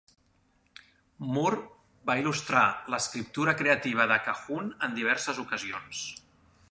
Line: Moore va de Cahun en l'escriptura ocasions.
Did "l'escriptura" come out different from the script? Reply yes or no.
yes